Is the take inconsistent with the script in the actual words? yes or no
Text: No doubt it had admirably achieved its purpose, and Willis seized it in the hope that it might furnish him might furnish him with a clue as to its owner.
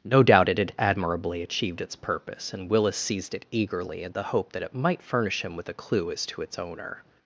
yes